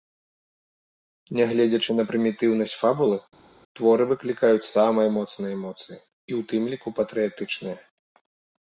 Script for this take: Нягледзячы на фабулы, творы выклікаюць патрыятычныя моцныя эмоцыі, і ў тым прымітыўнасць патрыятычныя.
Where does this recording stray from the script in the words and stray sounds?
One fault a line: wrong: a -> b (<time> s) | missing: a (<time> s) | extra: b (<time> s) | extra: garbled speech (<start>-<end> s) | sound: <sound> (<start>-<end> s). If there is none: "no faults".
extra: прымітыўнасць (2.1 s)
wrong: патрыятычныя -> самыя (4.8 s)
wrong: прымітыўнасць -> ліку (6.7 s)